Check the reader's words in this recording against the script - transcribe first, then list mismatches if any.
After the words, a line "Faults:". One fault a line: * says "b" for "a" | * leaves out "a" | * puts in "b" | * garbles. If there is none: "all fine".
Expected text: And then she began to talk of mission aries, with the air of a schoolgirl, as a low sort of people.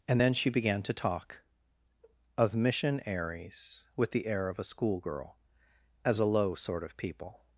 And then she began to talk of mission aries, with the air of a schoolgirl, as a low sort of people.
Faults:
all fine